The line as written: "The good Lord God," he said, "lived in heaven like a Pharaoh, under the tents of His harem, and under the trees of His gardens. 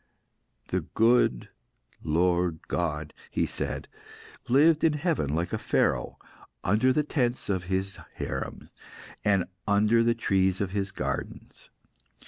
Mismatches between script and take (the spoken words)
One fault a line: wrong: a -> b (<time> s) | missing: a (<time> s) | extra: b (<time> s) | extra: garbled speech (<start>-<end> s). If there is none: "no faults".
no faults